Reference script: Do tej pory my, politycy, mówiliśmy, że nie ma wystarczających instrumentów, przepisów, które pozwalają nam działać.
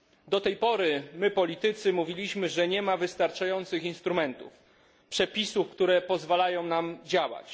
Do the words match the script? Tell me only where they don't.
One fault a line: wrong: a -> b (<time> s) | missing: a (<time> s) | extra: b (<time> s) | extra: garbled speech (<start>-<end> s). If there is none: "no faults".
no faults